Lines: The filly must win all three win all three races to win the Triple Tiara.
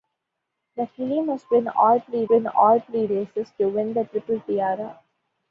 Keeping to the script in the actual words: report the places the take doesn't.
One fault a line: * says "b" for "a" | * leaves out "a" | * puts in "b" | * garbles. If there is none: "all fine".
all fine